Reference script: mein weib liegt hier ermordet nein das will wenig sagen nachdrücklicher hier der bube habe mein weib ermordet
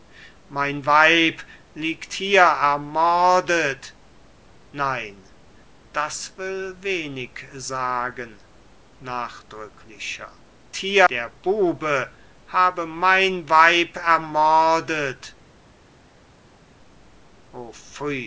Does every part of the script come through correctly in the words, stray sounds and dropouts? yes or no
yes